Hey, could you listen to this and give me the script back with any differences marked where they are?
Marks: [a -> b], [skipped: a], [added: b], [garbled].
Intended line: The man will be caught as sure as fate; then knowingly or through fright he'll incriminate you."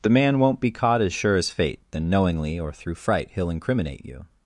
The man [will -> won't] be caught as sure as fate; then knowingly or through fright he'll incriminate you."